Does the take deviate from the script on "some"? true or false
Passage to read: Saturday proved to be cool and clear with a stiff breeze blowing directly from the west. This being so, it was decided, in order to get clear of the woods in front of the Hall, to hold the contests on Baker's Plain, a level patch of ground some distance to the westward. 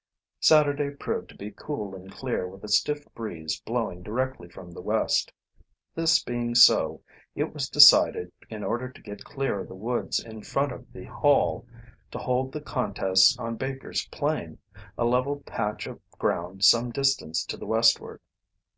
false